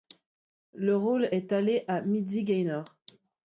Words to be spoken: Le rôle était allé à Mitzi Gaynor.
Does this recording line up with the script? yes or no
no